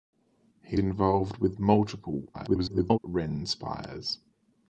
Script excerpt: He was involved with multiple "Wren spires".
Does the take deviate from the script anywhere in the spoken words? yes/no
yes